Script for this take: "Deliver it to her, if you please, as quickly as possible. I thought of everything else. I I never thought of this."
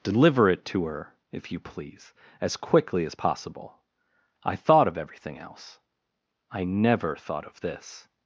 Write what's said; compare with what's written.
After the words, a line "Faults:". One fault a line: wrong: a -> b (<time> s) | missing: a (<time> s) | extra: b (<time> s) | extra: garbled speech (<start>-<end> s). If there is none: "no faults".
"Deliver it to her, if you please, as quickly as possible. I thought of everything else. I never thought of this."
Faults:
missing: I (6.6 s)